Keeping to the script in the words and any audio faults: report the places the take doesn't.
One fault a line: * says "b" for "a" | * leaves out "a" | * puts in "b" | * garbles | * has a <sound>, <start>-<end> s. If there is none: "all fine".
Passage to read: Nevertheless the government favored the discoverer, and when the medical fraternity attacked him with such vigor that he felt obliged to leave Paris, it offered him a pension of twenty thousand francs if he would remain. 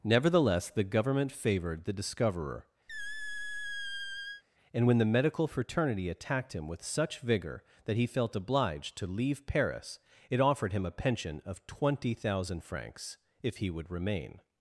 * has a squeak, 2.9-4.4 s